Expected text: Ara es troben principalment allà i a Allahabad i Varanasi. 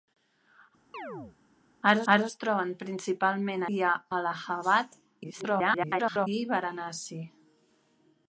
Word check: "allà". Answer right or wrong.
wrong